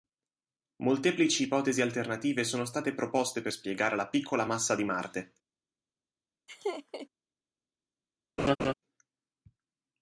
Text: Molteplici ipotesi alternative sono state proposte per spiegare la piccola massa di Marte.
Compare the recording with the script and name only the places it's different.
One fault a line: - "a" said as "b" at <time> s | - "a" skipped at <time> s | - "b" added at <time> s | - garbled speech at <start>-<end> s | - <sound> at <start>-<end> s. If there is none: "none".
- laugh at 6.5-7.1 s
- laugh at 8.4-8.7 s